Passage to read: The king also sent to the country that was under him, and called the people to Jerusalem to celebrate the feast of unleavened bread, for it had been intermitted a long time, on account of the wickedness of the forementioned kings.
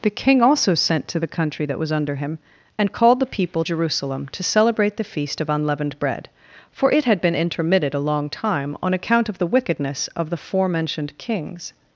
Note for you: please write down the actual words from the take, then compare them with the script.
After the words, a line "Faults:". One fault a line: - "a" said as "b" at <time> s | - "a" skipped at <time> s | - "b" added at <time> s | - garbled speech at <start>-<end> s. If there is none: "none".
The king also sent to the country that was under him, and called the people Jerusalem to celebrate the feast of unleavened bread, for it had been intermitted a long time, on account of the wickedness of the forementioned kings.
Faults:
- "to" skipped at 3.7 s